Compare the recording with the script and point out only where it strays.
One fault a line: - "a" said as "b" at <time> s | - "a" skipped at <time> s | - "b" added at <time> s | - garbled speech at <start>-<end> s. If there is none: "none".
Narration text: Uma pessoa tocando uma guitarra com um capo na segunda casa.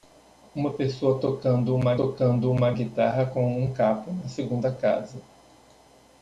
- "tocando uma" added at 1.9 s